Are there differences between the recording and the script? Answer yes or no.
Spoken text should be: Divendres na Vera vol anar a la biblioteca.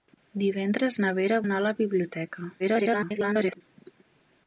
yes